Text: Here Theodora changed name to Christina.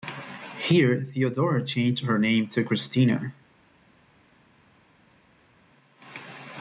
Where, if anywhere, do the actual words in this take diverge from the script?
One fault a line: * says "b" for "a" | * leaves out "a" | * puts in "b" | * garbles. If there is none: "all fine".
* puts in "her"